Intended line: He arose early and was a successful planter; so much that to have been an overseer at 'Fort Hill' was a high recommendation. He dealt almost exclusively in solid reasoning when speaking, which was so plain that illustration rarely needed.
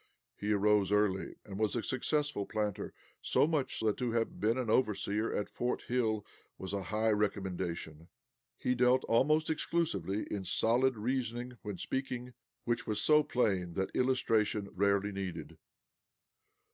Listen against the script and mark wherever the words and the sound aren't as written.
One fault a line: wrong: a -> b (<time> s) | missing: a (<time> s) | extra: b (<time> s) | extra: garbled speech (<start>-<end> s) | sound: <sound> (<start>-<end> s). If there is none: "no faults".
no faults